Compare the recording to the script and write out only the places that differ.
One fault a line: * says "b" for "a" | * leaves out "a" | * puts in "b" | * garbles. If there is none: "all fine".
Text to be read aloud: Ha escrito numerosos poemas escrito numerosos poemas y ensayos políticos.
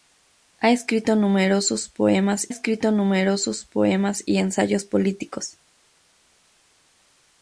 all fine